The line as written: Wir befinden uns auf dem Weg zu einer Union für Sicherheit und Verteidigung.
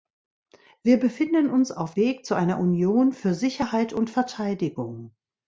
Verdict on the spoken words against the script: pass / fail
fail